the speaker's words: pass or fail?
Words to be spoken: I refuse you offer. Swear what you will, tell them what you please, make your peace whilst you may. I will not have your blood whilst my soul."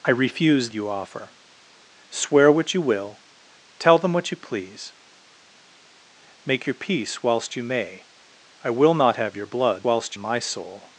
pass